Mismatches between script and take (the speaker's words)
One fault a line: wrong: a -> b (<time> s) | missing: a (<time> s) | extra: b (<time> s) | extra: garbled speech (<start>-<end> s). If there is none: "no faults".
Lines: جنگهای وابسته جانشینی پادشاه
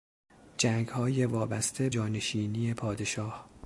no faults